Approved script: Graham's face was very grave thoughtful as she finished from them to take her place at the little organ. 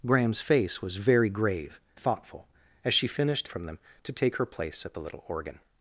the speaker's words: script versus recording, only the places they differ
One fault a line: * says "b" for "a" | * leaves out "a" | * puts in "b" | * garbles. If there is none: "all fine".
all fine